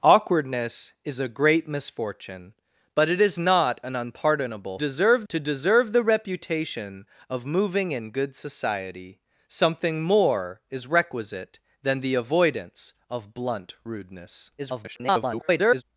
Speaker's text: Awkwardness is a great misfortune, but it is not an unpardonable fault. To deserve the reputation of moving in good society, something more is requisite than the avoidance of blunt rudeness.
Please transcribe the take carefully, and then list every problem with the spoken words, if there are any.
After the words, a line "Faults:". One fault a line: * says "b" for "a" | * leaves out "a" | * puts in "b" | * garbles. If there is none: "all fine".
Awkwardness is a great misfortune, but it is not an unpardonable deserve. To deserve the reputation of moving in good society, something more is requisite than the avoidance of blunt rudeness. [garbled]
Faults:
* says "deserve" for "fault"
* garbles